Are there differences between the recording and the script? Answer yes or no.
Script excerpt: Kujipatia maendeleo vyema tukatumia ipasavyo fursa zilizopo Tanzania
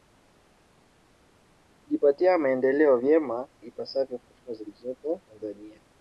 yes